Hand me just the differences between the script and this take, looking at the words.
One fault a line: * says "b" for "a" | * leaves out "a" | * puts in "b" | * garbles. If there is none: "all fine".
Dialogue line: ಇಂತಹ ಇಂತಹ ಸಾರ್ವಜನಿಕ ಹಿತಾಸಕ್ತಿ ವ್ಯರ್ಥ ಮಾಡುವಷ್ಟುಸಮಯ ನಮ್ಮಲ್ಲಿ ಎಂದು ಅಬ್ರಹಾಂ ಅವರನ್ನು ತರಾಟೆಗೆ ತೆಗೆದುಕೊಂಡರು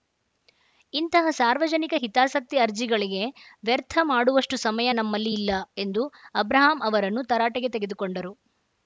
* leaves out "ಇಂತಹ"
* puts in "ಅರ್ಜಿಗಳಿಗೆ"
* puts in "ಇಲ್ಲ"